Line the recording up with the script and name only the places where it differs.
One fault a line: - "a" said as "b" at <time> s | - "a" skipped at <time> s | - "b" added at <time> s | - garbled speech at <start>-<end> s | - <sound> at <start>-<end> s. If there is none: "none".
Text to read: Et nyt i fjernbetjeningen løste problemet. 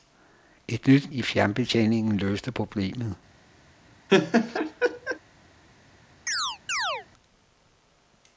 - laugh at 4.1-5.2 s
- chirp at 6.3-7.1 s